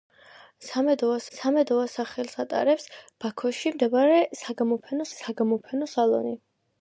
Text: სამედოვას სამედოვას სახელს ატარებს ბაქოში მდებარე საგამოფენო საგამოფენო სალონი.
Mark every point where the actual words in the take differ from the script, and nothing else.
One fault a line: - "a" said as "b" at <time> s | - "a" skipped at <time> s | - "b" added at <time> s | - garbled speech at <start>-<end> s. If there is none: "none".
none